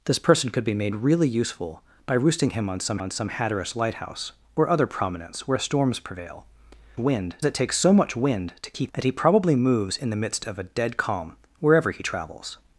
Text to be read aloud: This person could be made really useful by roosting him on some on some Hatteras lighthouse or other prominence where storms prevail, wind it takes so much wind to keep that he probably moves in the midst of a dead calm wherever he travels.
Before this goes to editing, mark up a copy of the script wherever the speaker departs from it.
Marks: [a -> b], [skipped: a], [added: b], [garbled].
This person could be made really useful by roosting him on some on some Hatteras lighthouse or other prominence where storms prevail, wind it takes so much wind to keep that he probably moves in the midst of a dead calm wherever he travels.